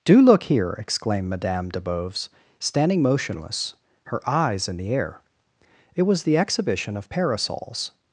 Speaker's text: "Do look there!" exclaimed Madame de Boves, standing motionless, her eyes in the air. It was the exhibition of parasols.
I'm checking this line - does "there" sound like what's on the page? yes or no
no